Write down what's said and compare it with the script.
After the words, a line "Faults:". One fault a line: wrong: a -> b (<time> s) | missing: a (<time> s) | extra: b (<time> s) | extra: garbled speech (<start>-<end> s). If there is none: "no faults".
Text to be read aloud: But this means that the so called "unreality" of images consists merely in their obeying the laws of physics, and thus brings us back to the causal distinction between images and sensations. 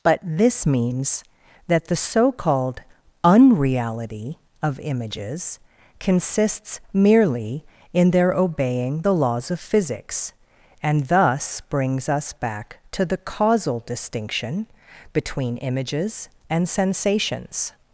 But this means that the so called "unreality" of images consists merely in their obeying the laws of physics, and thus brings us back to the causal distinction between images and sensations.
Faults:
no faults